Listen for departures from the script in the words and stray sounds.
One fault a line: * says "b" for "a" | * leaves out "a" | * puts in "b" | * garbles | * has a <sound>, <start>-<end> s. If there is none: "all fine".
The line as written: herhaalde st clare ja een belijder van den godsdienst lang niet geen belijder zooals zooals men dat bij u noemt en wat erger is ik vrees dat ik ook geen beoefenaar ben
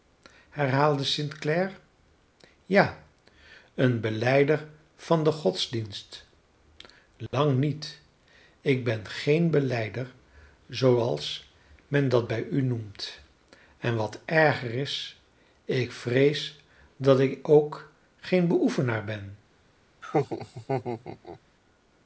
* has a dropout, 7.3-7.3 s
* puts in "ik ben"
* leaves out "zooals"
* has a laugh, 20.0-21.4 s